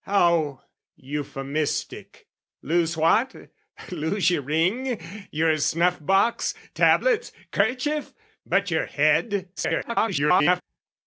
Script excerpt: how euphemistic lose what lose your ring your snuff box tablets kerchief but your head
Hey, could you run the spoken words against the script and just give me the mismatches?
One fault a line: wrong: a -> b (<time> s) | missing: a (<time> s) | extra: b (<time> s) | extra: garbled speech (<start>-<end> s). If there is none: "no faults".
extra: garbled speech (9.6-10.6 s)